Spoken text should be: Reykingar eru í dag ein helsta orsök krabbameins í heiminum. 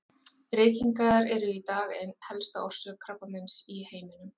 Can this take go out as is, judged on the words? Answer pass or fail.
pass